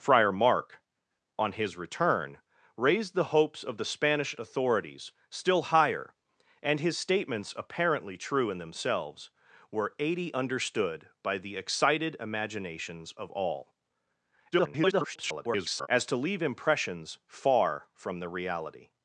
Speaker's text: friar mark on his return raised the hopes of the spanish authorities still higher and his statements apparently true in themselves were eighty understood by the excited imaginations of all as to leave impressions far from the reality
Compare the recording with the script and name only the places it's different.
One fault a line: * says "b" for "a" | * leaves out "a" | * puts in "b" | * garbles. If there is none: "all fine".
* garbles